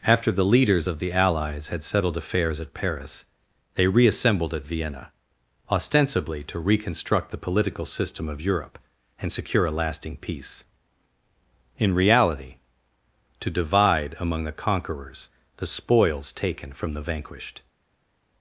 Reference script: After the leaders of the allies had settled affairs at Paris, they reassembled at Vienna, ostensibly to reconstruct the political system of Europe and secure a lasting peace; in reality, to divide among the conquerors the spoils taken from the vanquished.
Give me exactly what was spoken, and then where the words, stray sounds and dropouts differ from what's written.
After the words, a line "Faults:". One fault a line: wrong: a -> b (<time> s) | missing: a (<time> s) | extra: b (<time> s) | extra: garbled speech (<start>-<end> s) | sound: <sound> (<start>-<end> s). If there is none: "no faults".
After the leaders of the allies had settled affairs at Paris, they reassembled at Vienna, ostensibly to reconstruct the political system of Europe and secure a lasting peace; in reality, to divide among the conquerors the spoils taken from the vanquished.
Faults:
no faults